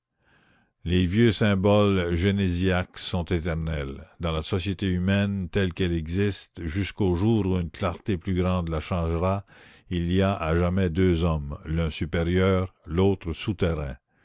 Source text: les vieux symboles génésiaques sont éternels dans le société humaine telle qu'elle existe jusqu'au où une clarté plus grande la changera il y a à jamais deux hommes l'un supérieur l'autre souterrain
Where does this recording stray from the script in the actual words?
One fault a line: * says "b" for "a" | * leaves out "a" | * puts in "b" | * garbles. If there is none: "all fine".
* says "la" for "le"
* puts in "jour"